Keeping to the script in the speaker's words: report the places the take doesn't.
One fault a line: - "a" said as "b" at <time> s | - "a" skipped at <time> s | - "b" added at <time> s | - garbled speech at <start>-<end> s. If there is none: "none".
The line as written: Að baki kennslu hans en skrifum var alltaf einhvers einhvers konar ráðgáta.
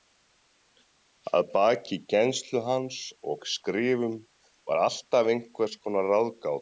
- "en" said as "og" at 3.3 s
- "einhvers" skipped at 5.8 s